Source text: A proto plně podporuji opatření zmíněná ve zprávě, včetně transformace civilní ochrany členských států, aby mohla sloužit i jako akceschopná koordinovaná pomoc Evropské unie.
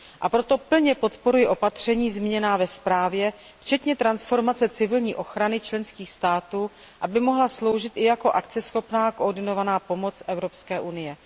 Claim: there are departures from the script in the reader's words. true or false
false